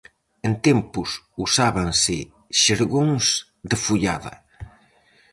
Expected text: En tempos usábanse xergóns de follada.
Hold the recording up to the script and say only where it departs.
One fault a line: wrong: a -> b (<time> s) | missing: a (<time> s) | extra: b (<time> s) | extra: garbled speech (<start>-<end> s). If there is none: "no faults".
no faults